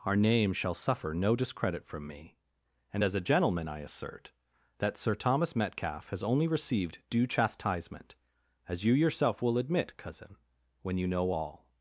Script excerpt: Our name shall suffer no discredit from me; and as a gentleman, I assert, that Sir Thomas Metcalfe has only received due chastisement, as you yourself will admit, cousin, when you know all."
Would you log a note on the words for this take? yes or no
no